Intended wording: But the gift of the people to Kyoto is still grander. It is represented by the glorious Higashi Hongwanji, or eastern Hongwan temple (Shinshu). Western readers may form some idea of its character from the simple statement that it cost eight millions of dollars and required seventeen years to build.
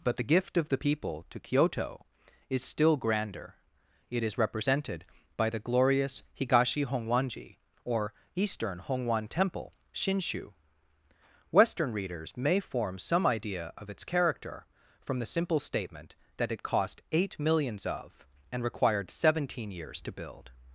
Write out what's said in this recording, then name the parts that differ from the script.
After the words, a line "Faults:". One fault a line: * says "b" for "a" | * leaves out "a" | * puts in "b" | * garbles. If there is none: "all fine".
But the gift of the people to Kyoto is still grander. It is represented by the glorious Higashi Hongwanji, or eastern Hongwan temple (Shinshu). Western readers may form some idea of its character from the simple statement that it cost eight millions of and required seventeen years to build.
Faults:
* leaves out "dollars"